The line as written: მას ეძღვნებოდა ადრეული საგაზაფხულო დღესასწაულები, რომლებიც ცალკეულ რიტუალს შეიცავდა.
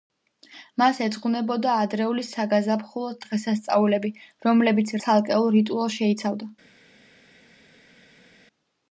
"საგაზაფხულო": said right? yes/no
yes